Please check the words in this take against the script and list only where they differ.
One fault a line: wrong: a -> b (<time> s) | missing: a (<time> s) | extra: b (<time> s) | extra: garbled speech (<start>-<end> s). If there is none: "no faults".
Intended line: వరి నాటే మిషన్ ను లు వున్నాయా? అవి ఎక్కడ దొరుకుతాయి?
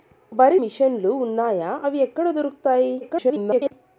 missing: నాటే (0.6 s)
extra: garbled speech (3.0-3.7 s)